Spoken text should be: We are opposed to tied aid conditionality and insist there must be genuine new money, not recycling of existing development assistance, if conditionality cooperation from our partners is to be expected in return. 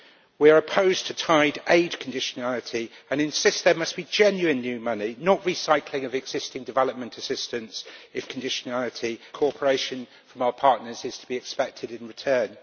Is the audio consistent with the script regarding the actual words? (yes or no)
yes